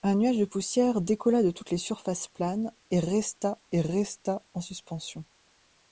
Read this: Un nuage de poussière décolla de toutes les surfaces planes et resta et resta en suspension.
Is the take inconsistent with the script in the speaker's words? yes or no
no